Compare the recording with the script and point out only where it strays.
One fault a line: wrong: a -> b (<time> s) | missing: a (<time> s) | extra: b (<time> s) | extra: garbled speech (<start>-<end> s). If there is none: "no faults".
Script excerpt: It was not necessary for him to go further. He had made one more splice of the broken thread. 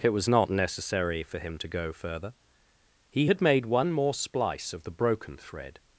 no faults